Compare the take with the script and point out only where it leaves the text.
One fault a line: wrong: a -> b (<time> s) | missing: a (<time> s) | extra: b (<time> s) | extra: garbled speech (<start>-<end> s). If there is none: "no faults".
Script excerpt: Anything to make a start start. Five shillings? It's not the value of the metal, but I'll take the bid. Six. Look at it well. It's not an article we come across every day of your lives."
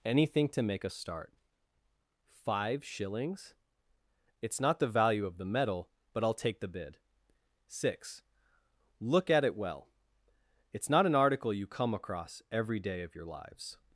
missing: start (1.3 s)
wrong: we -> you (11.5 s)